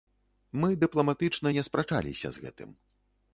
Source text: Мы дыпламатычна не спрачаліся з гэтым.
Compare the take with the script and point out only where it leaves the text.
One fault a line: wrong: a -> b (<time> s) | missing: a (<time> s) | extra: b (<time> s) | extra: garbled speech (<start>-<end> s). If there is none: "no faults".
no faults